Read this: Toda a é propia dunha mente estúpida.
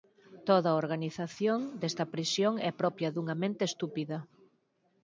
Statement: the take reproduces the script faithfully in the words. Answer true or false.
false